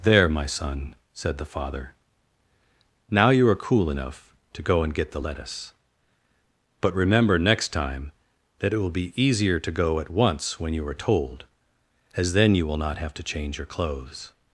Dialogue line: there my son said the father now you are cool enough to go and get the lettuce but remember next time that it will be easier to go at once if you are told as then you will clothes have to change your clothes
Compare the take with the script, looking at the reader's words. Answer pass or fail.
fail